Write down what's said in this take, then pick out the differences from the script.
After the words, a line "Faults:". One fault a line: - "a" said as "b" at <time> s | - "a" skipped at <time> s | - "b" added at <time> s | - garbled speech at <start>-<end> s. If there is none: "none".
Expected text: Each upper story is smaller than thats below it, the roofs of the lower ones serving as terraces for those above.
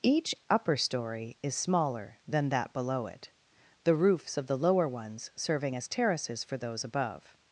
Each upper story is smaller than that below it, the roofs of the lower ones serving as terraces for those above.
Faults:
- "thats" said as "that" at 2.5 s